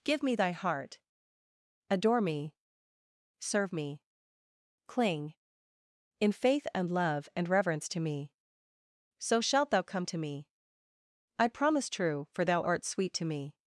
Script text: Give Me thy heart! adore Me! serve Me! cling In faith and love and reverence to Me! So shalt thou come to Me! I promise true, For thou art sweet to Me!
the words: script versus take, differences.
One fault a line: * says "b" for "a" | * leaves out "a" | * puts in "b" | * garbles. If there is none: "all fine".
all fine